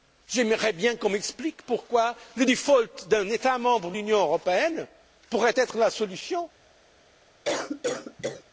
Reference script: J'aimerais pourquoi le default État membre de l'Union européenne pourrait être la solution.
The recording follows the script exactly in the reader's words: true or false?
false